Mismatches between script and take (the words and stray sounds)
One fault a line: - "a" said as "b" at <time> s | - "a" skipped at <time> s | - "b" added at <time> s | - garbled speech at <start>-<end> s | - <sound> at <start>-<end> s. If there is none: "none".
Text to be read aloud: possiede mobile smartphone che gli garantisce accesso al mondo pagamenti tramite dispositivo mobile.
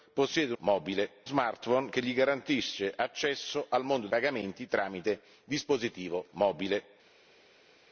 none